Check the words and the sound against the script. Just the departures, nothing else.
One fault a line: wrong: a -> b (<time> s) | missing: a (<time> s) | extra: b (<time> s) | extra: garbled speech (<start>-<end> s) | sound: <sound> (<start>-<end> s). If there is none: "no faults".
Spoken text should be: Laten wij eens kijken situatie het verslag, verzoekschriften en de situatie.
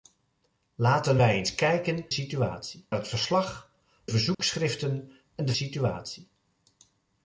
sound: dropout (4.3-4.4 s)